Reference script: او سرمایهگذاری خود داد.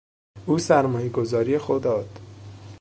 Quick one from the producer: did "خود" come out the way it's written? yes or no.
yes